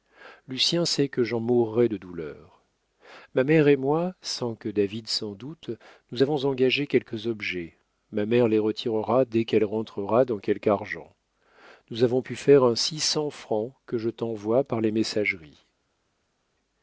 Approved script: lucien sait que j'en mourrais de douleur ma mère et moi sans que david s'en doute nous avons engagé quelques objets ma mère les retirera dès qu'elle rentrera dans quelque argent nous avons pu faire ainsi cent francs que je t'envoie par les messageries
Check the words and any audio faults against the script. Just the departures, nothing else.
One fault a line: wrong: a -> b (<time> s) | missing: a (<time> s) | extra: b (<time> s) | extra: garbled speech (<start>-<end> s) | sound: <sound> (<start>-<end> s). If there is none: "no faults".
no faults